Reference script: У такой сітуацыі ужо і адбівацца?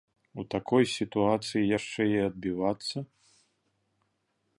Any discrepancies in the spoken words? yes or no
yes